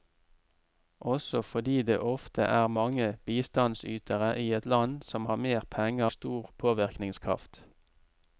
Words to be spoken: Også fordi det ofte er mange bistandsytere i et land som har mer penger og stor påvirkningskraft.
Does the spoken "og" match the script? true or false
false